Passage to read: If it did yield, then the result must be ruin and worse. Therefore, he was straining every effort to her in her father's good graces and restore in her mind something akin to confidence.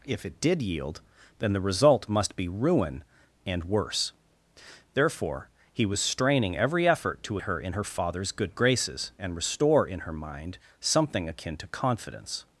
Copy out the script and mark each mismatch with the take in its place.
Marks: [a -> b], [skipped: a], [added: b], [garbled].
If it did yield, then the result must be ruin and worse. Therefore, he was straining every effort to her in her father's good graces and restore in her mind something akin to confidence.